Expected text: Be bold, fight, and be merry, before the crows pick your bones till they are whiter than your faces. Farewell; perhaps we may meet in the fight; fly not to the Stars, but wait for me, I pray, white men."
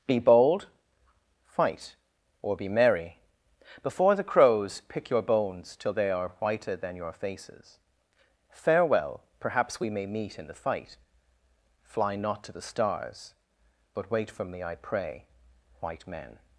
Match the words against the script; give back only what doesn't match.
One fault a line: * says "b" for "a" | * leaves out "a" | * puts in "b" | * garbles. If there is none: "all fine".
* says "or" for "and"